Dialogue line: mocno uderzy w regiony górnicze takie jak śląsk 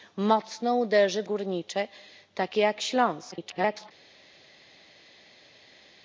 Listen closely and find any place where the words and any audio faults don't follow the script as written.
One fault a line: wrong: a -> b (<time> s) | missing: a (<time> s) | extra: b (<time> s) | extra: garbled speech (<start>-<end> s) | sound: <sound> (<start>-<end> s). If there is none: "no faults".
missing: regiony (1.3 s)
extra: garbled speech (3.3-3.9 s)